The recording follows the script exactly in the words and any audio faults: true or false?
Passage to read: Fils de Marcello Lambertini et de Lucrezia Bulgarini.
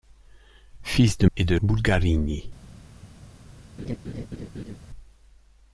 false